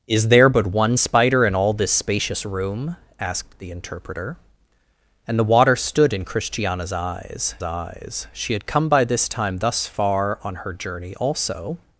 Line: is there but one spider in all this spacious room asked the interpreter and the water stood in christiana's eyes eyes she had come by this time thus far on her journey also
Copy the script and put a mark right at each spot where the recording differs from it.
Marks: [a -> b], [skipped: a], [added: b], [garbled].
is there but one spider in all this spacious room asked the interpreter and the water stood in christiana's eyes eyes she had come by this time thus far on her journey also